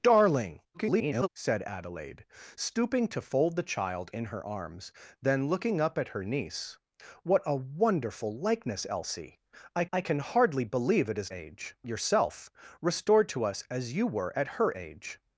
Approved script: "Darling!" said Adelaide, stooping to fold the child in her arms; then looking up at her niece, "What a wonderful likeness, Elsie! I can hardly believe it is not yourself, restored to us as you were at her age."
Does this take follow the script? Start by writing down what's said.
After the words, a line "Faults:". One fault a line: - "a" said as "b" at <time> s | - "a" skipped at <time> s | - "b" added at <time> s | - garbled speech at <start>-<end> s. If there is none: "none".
"Darling!" [garbled] said Adelaide, stooping to fold the child in her arms; then looking up at her niece, "What a wonderful likeness, Elsie! I I can hardly believe it is age yourself, restored to us as you were at her age."
Faults:
- garbled speech at 0.7-1.3 s
- "I" added at 9.9 s
- "not" said as "age" at 11.3 s